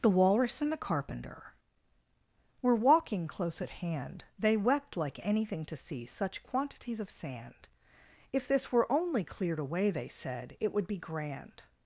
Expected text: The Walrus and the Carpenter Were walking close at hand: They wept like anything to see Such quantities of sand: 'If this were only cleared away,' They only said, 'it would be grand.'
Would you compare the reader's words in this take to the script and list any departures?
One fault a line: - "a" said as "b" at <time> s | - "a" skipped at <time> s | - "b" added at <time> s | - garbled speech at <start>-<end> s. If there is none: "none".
- "only" skipped at 10.1 s